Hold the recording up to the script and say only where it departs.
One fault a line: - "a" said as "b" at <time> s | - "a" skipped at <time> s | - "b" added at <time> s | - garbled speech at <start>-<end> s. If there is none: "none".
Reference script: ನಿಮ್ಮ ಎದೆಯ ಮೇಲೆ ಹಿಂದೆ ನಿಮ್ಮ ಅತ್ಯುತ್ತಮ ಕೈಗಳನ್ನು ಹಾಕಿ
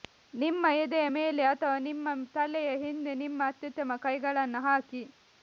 - "ಅಥವಾ ನಿಮ್ಮ ತಲೆಯ" added at 1.5 s